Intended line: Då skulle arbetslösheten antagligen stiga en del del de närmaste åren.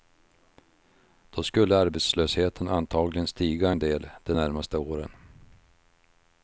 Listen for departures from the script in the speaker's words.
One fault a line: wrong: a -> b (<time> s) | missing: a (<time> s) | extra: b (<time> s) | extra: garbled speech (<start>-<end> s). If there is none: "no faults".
missing: del (4.1 s)